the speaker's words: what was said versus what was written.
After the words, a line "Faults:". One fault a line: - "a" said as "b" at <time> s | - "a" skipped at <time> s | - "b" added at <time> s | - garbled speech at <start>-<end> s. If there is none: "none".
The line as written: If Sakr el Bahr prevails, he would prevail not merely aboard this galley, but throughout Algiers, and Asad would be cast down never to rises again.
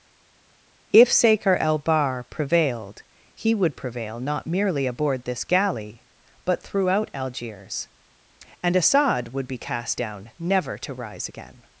If Sakr el Bahr prevailed, he would prevail not merely aboard this galley, but throughout Algiers, and Asad would be cast down never to rise again.
Faults:
- "prevails" said as "prevailed" at 2.3 s
- "rises" said as "rise" at 10.9 s